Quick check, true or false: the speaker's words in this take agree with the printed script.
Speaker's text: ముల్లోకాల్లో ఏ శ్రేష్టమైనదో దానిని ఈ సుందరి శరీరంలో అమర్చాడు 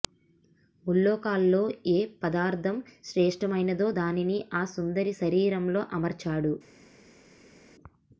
false